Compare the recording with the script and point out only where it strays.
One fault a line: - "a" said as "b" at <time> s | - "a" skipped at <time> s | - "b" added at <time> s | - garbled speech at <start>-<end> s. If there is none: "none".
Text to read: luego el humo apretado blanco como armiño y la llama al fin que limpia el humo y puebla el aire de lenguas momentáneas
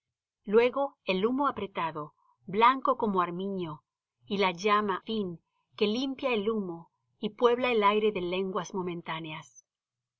- "al" skipped at 5.0 s